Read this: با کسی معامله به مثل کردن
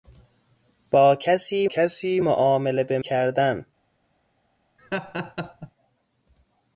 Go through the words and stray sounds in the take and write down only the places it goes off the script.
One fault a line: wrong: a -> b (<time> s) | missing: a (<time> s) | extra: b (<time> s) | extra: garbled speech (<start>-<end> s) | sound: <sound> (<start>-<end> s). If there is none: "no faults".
extra: کسی (1.6 s)
missing: مثل (3.0 s)
sound: laugh (4.8-5.7 s)